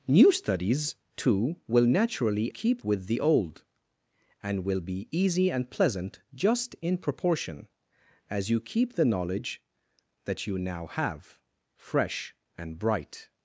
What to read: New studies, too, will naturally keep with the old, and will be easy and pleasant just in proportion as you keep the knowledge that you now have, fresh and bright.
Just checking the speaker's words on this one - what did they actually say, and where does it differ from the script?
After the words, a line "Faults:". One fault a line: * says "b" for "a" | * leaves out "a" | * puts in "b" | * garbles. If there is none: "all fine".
New studies, too, will naturally keep with the old, and will be easy and pleasant just in proportion as you keep the knowledge that you now have, fresh and bright.
Faults:
all fine